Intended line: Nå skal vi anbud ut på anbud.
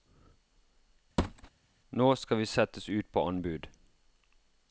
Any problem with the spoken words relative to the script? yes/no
yes